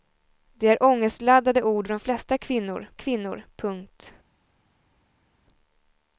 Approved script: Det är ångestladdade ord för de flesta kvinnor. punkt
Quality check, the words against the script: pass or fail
fail